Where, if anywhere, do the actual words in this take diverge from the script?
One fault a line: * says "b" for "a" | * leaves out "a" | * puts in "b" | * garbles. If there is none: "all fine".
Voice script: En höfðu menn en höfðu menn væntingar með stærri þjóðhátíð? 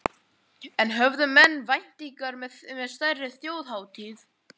* leaves out "en höfðu menn"